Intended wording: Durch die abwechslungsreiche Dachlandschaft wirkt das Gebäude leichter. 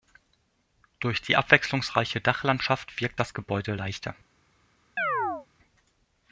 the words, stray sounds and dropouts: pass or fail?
fail